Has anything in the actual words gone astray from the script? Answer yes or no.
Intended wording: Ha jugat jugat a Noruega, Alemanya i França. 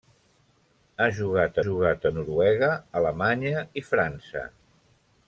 no